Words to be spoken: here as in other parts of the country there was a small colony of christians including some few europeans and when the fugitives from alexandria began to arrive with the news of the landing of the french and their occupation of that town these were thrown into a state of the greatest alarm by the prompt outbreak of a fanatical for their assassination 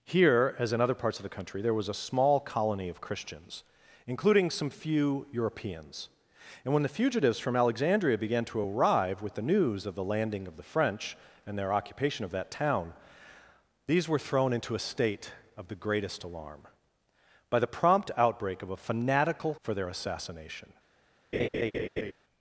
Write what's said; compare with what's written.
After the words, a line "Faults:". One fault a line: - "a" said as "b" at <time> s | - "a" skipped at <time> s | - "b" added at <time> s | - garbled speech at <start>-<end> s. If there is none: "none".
here as in other parts of the country there was a small colony of christians including some few europeans and when the fugitives from alexandria began to arrive with the news of the landing of the french and their occupation of that town these were thrown into a state of the greatest alarm by the prompt outbreak of a fanatical for their assassination
Faults:
none